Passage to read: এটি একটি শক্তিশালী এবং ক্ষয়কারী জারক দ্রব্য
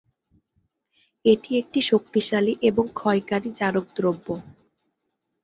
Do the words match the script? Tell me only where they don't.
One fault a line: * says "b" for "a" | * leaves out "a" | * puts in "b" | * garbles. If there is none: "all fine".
all fine